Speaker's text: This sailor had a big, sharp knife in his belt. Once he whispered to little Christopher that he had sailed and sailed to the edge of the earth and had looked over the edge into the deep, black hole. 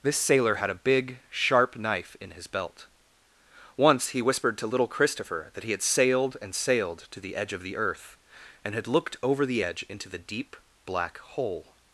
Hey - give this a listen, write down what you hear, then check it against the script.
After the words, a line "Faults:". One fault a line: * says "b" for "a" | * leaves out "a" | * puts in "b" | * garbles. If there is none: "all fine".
This sailor had a big, sharp knife in his belt. Once he whispered to little Christopher that he had sailed and sailed to the edge of the earth and had looked over the edge into the deep, black hole.
Faults:
all fine